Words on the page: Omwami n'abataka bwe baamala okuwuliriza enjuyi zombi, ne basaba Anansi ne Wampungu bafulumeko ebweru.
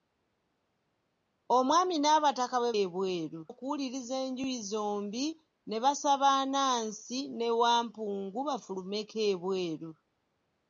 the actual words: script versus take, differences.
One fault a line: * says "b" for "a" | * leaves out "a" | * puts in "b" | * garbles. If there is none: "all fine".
* says "ebweru" for "baamala"